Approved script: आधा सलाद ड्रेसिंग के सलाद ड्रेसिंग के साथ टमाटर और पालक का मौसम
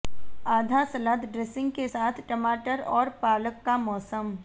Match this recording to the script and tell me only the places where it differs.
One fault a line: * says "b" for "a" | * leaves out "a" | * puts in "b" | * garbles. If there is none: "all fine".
* leaves out "सलाद ड्रेसिंग के"